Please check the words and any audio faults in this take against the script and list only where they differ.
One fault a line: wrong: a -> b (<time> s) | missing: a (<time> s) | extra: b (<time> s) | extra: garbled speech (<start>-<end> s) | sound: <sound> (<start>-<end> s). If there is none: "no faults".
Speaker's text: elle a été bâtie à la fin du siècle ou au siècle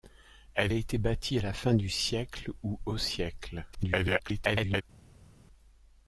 extra: garbled speech (3.7-4.8 s)